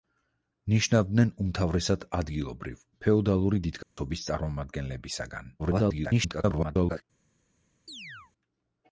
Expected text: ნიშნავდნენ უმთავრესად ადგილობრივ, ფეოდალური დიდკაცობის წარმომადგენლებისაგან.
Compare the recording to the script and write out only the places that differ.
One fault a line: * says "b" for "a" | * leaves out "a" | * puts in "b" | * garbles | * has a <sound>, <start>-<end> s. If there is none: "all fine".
* has a dropout, 3.8-4.0 s
* garbles
* has a chirp, 7.9-8.3 s